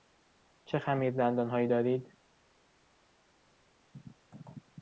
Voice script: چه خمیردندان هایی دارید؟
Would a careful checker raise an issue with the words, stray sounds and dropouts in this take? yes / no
no